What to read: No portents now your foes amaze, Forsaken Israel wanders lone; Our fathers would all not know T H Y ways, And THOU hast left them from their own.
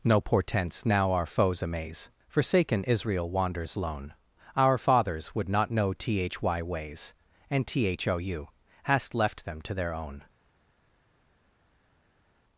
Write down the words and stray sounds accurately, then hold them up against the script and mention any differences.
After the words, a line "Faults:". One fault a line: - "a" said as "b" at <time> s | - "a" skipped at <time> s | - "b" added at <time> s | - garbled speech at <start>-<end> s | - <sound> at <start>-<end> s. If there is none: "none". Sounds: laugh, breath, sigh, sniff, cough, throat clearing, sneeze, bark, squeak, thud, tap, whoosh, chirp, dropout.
No portents now our foes amaze, Forsaken Israel wanders lone; Our fathers would not know T H Y ways, And THOU hast left them to their own.
Faults:
- "your" said as "our" at 1.1 s
- "all" skipped at 5.5 s
- "from" said as "to" at 9.6 s